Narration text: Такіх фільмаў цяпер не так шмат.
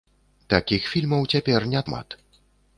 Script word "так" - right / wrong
wrong